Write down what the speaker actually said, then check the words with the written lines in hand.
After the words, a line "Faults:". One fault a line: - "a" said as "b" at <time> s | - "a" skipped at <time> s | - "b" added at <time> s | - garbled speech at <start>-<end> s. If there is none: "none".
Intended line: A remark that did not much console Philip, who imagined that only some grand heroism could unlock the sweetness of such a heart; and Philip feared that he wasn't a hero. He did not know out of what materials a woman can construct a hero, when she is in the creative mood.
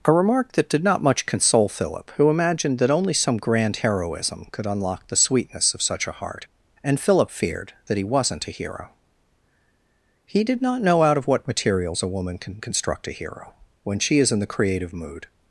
A remark that did not much console Philip, who imagined that only some grand heroism could unlock the sweetness of such a heart; and Philip feared that he wasn't a hero. He did not know out of what materials a woman can construct a hero, when she is in the creative mood.
Faults:
none